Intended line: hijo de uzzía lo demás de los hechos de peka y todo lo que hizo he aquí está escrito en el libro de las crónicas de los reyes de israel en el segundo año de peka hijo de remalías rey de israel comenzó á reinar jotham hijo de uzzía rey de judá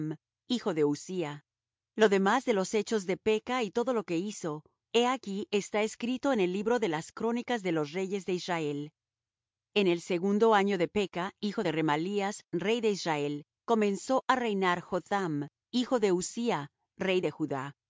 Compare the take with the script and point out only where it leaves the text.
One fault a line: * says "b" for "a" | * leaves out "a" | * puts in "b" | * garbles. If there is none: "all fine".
all fine